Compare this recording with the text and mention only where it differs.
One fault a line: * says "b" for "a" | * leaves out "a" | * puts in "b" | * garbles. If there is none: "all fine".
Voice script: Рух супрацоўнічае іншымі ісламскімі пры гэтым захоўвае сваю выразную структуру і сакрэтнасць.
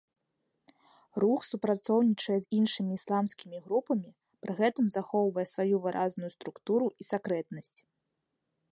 * puts in "з"
* puts in "групамі"